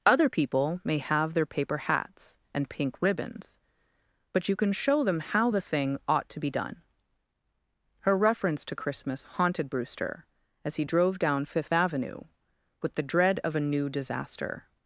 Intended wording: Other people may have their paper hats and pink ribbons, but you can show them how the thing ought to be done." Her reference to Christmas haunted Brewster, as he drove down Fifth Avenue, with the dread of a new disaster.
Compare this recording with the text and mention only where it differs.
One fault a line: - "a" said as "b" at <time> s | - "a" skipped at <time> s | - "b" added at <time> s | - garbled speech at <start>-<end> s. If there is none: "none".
none